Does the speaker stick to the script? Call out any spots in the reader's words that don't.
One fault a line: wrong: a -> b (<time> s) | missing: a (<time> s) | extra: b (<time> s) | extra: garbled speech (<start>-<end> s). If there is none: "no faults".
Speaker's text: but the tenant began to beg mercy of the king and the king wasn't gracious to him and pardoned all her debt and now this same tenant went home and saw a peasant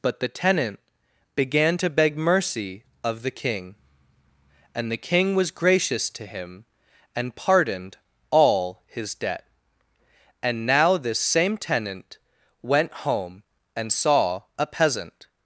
wrong: wasn't -> was (5.3 s)
wrong: her -> his (8.9 s)